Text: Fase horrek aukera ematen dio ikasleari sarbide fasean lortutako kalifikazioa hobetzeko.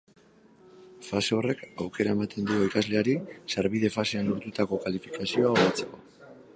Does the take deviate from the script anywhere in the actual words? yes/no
no